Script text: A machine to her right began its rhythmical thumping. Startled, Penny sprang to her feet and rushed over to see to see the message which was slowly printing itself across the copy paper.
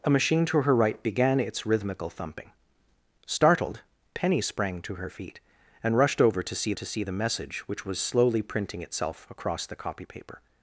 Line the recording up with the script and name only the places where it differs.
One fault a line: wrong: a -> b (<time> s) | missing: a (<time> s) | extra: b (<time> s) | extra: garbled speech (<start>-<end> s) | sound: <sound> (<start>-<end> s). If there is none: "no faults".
no faults